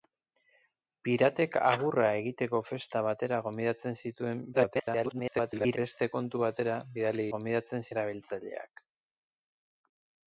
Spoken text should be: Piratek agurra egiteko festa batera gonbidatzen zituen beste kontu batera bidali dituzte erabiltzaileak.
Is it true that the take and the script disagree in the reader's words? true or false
true